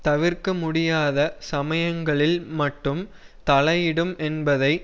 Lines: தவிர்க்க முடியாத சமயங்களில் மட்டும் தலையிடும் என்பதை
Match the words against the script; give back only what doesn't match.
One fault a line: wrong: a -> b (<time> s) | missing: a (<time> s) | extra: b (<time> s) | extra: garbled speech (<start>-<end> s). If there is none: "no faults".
no faults